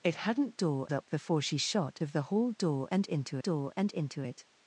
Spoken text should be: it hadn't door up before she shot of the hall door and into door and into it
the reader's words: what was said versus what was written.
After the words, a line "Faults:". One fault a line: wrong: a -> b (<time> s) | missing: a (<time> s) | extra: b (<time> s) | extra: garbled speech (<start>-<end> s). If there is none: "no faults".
it hadn't door up before she shot of the hall door and into door and into it
Faults:
no faults